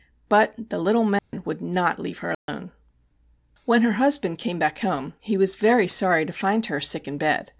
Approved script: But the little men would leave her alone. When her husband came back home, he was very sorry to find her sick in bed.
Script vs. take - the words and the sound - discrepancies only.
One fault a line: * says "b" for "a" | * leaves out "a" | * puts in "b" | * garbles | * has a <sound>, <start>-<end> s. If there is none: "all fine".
* has a dropout, 1.2-1.3 s
* puts in "not"
* has a dropout, 2.3-2.5 s